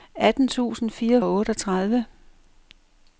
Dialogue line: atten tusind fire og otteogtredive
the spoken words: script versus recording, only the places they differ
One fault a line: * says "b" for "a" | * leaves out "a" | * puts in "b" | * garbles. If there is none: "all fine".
all fine